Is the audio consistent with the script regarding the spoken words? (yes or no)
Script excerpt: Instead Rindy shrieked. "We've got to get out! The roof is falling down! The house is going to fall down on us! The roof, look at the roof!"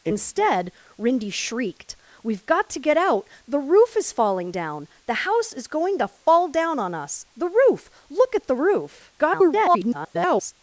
no